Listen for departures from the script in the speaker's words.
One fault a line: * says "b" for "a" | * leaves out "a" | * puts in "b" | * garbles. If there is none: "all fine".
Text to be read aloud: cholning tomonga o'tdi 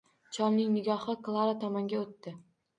* puts in "nigohi klara"